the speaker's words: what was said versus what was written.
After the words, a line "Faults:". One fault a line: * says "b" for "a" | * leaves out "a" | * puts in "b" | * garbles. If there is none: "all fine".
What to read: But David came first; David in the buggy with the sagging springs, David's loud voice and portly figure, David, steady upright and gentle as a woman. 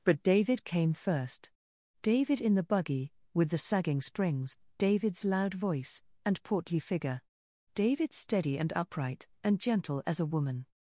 But David came first; David in the buggy with the sagging springs, David's loud voice and portly figure, David, steady and upright and gentle as a woman.
Faults:
* puts in "and"